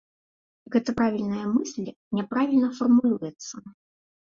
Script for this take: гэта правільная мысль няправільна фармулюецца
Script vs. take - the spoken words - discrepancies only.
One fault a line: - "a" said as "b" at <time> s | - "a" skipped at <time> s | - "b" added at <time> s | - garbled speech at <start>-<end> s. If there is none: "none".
none